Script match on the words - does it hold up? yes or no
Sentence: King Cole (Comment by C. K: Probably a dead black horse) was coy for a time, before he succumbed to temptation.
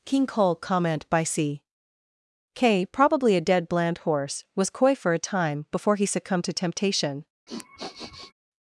no